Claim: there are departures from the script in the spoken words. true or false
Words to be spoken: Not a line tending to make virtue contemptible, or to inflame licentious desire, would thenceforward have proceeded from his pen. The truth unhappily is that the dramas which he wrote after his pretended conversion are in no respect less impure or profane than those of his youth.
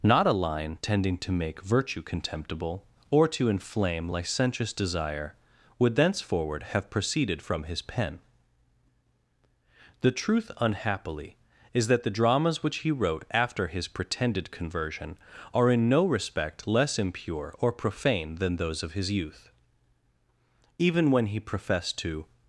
true